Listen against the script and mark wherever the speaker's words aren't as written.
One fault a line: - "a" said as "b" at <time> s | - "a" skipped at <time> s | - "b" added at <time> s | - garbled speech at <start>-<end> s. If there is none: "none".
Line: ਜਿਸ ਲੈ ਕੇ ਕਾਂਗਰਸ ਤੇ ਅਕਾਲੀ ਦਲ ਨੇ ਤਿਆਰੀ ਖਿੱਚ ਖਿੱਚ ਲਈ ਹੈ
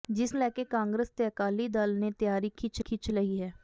none